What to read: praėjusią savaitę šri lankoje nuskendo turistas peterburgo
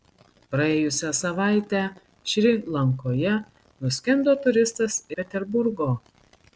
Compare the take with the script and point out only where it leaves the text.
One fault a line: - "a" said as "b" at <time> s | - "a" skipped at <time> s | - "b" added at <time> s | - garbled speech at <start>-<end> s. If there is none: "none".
none